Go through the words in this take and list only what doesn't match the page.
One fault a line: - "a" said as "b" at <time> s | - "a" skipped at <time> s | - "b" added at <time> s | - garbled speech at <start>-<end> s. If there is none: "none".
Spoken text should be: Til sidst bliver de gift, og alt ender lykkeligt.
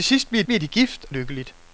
- "bliver" added at 0.5 s
- "og alt ender" skipped at 1.1 s